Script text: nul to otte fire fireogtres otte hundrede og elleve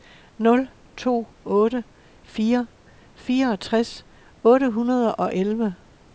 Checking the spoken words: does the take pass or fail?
pass